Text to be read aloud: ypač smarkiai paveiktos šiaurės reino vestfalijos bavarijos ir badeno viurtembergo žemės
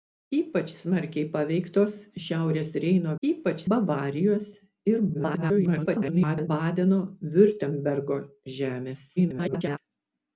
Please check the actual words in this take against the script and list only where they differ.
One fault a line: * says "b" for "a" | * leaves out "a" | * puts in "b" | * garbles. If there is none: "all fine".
* says "ypač" for "vestfalijos"
* garbles
* garbles